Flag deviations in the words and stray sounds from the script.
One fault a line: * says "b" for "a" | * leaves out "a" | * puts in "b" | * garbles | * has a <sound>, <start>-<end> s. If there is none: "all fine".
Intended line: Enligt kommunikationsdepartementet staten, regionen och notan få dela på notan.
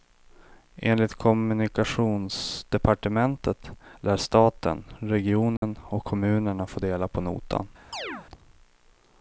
* puts in "lär"
* has a dropout, 5.6-5.6 s
* says "kommunerna" for "notan"
* has a chirp, 7.9-8.3 s